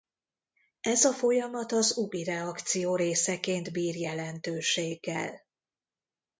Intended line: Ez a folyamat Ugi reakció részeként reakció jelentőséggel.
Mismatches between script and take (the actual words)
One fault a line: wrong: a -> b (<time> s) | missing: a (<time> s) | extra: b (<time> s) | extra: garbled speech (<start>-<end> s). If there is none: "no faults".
extra: az (1.7 s)
wrong: reakció -> bír (3.7 s)